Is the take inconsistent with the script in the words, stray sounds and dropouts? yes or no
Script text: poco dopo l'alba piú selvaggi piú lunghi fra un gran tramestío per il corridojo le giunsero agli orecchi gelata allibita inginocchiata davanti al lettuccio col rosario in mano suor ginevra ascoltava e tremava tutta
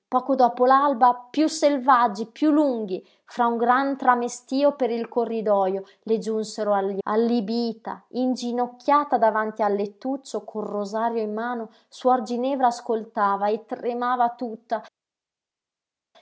yes